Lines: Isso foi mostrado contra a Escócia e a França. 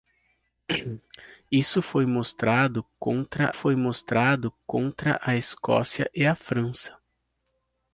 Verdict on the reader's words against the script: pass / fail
fail